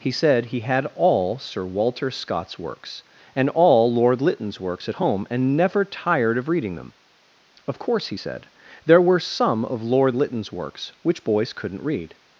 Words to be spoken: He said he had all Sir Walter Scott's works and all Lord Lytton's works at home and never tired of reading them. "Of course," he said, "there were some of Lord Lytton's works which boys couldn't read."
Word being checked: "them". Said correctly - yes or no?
yes